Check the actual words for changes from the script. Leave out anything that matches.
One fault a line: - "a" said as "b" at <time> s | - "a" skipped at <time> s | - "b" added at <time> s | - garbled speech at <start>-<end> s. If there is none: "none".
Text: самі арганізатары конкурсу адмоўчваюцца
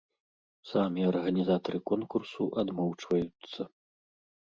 none